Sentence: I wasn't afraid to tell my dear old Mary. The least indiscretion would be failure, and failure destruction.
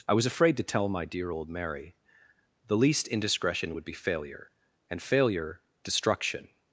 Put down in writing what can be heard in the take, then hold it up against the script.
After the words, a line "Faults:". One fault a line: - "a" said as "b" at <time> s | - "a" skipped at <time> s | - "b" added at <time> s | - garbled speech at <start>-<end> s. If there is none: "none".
I was afraid to tell my dear old Mary. The least indiscretion would be failure, and failure destruction.
Faults:
- "wasn't" said as "was" at 0.1 s